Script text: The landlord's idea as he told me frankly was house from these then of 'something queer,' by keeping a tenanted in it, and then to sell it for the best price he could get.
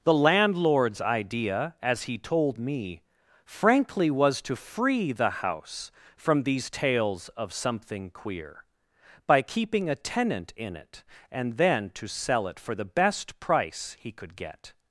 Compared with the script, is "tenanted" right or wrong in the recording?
wrong